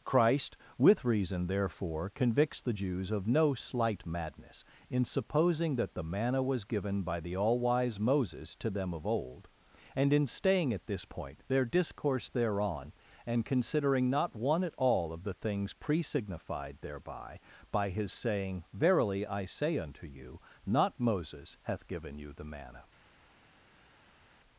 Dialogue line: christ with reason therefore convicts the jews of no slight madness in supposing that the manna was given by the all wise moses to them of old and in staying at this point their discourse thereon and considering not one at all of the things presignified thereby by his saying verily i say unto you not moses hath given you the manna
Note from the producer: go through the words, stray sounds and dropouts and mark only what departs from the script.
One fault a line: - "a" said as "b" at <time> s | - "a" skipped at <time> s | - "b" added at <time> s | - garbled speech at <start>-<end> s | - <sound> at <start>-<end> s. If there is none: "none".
none